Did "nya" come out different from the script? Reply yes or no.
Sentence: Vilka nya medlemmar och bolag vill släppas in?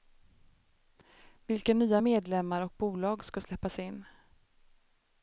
no